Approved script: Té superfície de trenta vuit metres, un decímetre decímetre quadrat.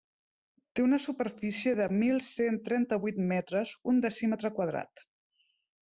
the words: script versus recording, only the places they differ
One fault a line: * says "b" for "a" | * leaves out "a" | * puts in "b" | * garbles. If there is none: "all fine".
* puts in "una"
* puts in "mil cent"
* leaves out "decímetre"